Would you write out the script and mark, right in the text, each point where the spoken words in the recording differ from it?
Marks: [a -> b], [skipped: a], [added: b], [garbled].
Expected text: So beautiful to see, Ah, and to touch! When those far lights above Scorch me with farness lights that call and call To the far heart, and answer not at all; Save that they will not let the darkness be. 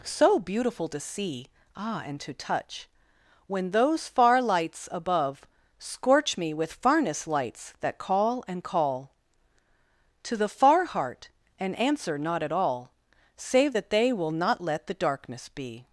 So beautiful to see, Ah, and to touch! When those far lights above Scorch me with farness lights that call and call To the far heart, and answer not at all; Save that they will not let the darkness be.